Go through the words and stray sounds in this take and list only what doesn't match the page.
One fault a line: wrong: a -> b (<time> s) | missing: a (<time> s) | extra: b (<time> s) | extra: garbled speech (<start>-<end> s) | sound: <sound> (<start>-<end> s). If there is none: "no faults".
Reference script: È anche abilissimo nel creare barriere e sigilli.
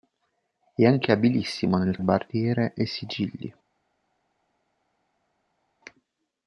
missing: creare (2.0 s)